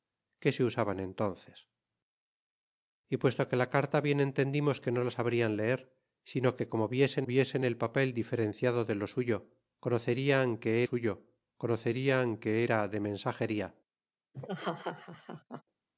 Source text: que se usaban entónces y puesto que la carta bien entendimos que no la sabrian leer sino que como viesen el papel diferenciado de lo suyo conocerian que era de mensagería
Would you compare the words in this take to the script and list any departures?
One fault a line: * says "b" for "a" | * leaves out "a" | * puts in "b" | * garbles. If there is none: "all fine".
* puts in "viesen"
* puts in "suyo conocerian que"